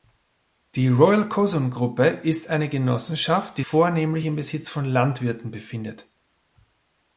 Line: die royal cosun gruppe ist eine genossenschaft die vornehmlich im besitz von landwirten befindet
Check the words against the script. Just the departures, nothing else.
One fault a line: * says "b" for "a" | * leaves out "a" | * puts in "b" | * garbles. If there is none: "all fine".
all fine